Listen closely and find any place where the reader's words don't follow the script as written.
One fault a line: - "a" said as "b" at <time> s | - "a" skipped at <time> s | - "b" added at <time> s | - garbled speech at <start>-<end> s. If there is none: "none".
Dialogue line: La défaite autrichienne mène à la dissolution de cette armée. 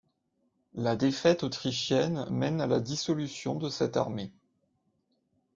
none